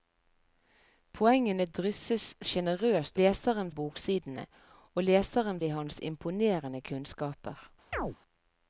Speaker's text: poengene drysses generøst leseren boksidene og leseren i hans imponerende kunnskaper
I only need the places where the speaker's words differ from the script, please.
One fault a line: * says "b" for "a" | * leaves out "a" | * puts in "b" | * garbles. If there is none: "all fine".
all fine